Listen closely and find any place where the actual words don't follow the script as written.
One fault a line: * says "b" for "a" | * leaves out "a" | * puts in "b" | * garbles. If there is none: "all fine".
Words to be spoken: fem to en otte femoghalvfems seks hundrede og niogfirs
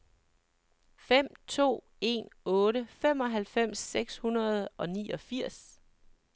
all fine